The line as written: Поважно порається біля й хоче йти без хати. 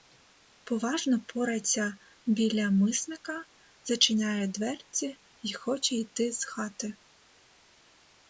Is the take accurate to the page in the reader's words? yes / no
no